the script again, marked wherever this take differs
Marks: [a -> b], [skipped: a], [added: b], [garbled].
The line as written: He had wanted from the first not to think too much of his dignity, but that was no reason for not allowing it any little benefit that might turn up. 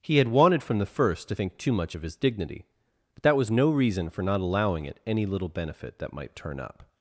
He had wanted from the first [skipped: not] to think too much of his dignity, but that was no reason for not allowing it any little benefit that might turn up.